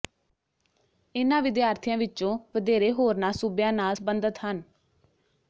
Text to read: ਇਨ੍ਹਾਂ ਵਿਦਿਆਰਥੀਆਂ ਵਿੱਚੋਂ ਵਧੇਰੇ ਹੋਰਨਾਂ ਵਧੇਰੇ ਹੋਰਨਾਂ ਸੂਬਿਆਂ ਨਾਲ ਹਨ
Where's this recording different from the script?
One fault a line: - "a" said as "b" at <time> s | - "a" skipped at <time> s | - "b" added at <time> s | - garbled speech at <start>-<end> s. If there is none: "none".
- "ਵਧੇਰੇ ਹੋਰਨਾਂ" skipped at 3.3 s
- "ਸਬੰਧਤ" added at 3.9 s